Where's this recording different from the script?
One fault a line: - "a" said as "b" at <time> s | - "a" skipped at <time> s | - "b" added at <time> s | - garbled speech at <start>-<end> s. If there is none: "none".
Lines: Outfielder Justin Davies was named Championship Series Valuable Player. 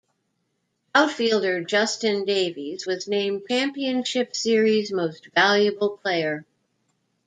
- "Most" added at 4.9 s